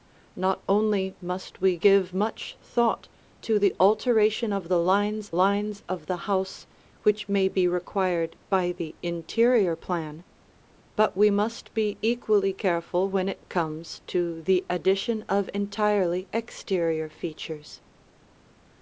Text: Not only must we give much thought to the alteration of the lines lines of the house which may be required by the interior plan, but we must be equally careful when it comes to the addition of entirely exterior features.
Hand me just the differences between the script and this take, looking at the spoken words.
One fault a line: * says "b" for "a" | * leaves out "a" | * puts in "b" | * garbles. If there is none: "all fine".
all fine